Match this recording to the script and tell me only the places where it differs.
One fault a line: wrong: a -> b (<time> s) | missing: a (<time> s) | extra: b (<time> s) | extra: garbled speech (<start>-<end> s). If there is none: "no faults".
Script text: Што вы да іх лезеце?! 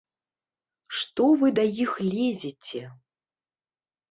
no faults